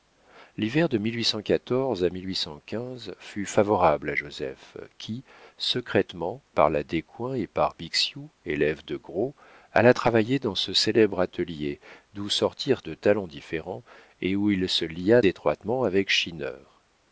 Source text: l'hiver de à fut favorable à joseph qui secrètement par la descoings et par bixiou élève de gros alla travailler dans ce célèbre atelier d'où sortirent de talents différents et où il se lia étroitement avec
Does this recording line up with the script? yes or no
yes